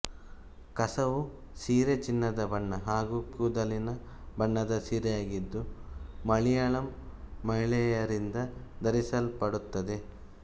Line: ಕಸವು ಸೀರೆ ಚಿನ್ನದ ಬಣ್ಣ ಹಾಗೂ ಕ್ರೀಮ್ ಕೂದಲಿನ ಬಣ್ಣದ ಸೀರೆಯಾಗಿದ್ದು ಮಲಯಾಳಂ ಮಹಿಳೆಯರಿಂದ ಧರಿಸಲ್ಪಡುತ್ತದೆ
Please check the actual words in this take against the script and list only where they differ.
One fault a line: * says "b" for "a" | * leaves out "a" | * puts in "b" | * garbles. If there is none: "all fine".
* leaves out "ಕ್ರೀಮ್"